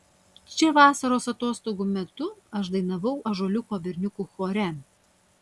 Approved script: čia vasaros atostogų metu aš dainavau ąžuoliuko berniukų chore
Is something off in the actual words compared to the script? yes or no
no